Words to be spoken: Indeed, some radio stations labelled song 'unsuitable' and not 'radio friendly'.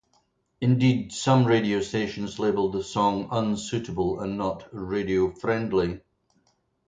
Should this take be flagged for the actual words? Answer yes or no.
yes